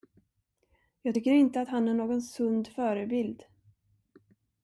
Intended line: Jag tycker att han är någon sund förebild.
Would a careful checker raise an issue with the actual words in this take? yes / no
yes